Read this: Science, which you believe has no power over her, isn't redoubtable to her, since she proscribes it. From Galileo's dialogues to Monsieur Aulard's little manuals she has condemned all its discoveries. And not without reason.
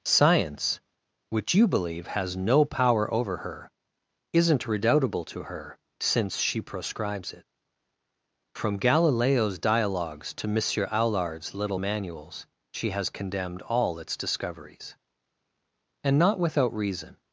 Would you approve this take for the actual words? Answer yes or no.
yes